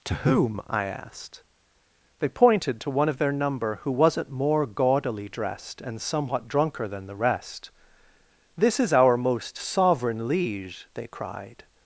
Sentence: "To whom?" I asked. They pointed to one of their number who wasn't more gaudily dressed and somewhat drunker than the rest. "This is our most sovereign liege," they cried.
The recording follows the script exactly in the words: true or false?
true